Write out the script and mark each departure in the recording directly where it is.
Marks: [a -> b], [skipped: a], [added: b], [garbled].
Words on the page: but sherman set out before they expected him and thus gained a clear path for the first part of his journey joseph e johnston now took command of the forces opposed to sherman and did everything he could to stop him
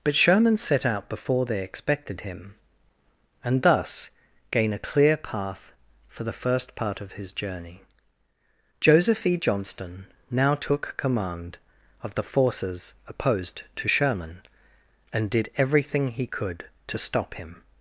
but sherman set out before they expected him and thus [gained -> gain] a clear path for the first part of his journey joseph e johnston now took command of the forces opposed to sherman and did everything he could to stop him